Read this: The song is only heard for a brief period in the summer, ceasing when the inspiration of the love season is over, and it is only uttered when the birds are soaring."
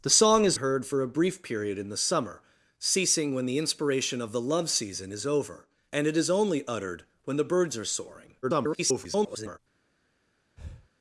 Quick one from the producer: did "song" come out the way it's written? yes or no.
yes